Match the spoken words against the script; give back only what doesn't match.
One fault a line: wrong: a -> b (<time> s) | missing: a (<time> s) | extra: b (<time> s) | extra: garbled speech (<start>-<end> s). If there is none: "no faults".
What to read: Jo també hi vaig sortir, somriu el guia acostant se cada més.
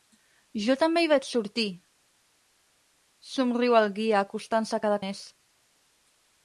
no faults